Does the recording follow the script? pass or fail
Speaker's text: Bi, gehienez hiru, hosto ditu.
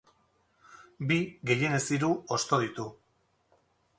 pass